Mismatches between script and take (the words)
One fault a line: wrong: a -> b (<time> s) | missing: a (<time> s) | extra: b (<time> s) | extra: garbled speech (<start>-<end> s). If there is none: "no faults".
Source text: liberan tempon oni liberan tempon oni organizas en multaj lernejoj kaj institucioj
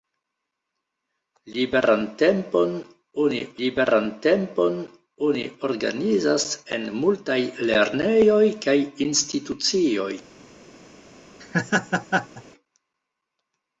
no faults